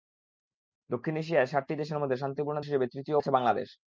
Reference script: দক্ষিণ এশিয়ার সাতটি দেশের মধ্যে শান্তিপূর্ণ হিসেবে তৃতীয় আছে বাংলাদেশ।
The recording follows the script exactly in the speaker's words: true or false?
true